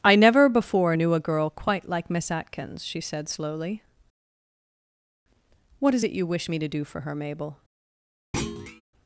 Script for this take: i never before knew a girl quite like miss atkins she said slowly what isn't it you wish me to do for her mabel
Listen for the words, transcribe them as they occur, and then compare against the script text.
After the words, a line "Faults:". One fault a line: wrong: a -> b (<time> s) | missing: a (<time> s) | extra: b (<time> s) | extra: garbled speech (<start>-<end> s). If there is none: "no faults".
i never before knew a girl quite like miss atkins she said slowly what is it you wish me to do for her mabel
Faults:
wrong: isn't -> is (5.9 s)